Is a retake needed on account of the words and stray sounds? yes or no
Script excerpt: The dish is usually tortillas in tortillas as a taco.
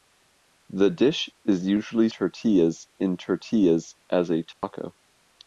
yes